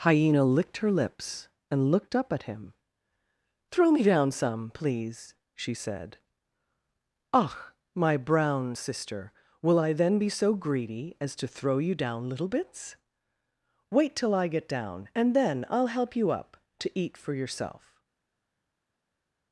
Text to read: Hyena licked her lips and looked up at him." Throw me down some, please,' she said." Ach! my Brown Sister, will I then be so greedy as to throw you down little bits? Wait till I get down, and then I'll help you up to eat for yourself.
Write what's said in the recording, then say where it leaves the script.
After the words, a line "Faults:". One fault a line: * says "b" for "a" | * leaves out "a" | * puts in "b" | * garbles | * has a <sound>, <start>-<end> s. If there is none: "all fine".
Hyena licked her lips and looked up at him." Throw me down some, please,' she said." Ach! my Brown Sister, will I then be so greedy as to throw you down little bits? Wait till I get down, and then I'll help you up to eat for yourself.
Faults:
all fine